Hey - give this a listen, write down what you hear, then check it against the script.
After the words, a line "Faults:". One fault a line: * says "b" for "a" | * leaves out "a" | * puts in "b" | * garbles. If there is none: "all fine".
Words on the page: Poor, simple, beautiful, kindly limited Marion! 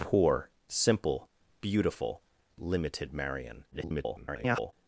Poor, simple, beautiful, limited Marion! [garbled]
Faults:
* leaves out "kindly"
* garbles